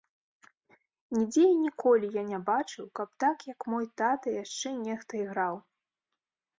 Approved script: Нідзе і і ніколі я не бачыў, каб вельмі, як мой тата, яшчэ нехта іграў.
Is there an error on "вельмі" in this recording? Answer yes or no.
yes